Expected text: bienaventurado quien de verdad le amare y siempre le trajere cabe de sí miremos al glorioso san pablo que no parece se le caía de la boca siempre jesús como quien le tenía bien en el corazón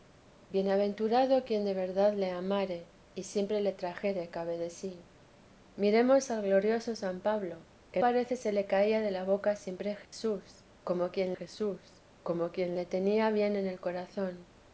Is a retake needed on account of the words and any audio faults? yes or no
yes